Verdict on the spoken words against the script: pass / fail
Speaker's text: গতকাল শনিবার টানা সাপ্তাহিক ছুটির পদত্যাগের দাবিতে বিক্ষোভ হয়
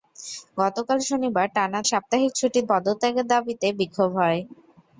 pass